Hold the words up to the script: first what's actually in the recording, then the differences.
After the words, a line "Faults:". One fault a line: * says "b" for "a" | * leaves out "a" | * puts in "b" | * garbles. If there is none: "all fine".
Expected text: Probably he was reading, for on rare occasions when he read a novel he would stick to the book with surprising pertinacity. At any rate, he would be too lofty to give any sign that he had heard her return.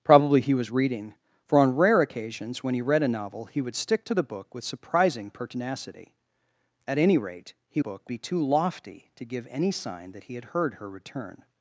Probably he was reading, for on rare occasions when he read a novel he would stick to the book with surprising pertinacity. At any rate, he book be too lofty to give any sign that he had heard her return.
Faults:
* says "book" for "would"